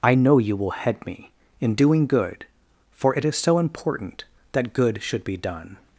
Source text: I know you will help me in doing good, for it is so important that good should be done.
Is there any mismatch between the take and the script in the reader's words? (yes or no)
yes